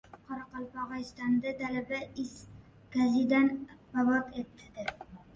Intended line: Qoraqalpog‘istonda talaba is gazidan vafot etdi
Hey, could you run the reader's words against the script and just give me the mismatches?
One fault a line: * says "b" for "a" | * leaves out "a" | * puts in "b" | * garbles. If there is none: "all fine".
all fine